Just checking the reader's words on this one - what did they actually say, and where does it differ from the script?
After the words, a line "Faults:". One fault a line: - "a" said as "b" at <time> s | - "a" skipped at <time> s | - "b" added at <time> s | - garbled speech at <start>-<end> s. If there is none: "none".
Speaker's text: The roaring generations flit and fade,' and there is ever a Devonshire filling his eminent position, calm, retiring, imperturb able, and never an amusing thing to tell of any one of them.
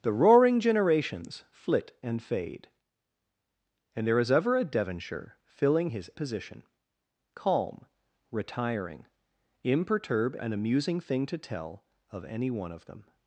The roaring generations flit and fade,' and there is ever a Devonshire filling his position, calm, retiring, imperturb an amusing thing to tell of any one of them.
Faults:
- "eminent" skipped at 6.1 s
- "able and never" skipped at 10.4 s